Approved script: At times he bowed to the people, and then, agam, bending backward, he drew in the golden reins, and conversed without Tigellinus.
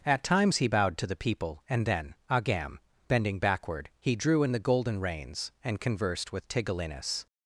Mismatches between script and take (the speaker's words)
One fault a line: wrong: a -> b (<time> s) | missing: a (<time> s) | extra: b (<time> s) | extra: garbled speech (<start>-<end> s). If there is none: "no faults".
wrong: without -> with (6.3 s)